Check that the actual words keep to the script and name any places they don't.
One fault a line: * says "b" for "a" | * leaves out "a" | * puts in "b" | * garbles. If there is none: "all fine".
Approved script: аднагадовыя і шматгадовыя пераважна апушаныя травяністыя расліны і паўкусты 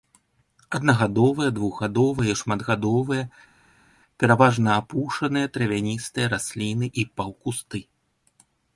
* puts in "двухгадовыя"